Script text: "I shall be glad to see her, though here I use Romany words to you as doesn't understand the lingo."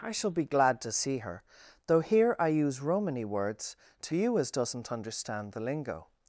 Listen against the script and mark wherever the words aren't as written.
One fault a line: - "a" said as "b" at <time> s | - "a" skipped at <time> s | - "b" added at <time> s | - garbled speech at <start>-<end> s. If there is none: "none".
none